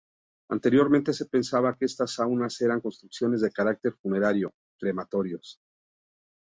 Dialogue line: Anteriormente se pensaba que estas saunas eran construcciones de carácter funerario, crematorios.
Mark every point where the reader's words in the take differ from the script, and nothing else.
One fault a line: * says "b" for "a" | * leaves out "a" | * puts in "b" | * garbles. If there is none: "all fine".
all fine